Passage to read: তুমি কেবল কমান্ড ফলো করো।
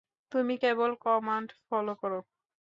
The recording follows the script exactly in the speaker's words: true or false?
true